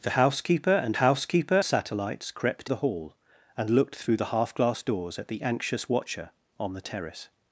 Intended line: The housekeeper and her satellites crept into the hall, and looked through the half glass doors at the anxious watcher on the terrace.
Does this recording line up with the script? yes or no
no